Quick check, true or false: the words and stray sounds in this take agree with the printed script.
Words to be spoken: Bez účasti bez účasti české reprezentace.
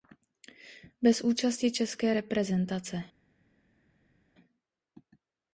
false